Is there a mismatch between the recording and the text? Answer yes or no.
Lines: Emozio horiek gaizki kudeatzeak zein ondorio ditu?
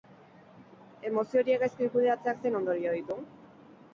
no